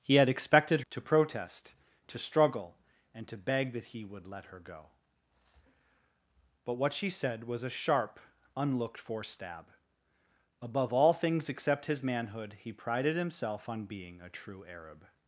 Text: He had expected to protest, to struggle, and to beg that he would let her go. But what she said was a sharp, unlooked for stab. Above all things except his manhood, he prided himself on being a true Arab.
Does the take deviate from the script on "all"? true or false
false